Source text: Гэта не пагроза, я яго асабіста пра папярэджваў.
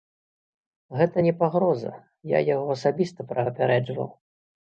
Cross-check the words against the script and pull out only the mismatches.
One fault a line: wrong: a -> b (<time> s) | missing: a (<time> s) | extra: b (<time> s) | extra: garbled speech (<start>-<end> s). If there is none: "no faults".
no faults